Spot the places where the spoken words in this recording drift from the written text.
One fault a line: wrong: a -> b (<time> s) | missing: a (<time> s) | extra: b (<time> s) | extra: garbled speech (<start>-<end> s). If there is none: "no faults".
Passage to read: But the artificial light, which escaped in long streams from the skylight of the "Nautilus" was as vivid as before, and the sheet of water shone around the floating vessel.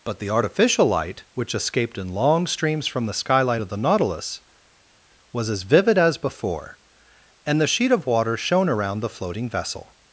no faults